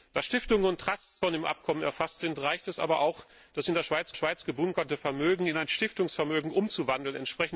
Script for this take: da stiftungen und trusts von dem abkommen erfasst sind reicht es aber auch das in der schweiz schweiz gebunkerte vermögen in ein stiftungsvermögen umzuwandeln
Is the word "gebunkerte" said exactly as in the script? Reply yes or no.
yes